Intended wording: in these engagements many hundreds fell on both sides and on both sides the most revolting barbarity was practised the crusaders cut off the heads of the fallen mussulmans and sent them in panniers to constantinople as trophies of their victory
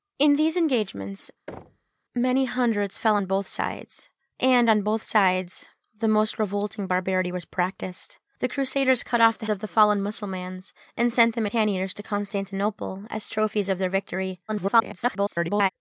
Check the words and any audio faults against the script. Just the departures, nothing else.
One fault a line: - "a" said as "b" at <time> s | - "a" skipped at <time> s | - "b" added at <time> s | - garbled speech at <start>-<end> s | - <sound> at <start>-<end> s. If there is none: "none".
- thud at 1.5-1.9 s
- "heads" skipped at 9.5 s
- "in" skipped at 11.5 s
- garbled speech at 14.5-15.7 s